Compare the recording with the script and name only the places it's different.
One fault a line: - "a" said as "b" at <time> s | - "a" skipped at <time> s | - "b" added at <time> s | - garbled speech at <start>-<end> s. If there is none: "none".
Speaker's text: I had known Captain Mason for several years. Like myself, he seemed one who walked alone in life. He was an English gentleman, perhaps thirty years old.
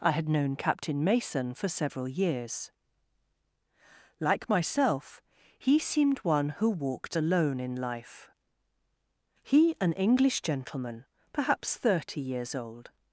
- "was" skipped at 9.7 s